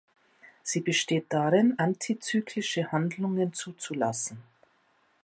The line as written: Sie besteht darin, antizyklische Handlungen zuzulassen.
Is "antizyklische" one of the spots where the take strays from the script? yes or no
no